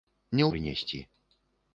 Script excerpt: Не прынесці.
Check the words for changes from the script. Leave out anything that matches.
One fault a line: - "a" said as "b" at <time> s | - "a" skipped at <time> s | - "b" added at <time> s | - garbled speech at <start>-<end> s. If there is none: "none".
none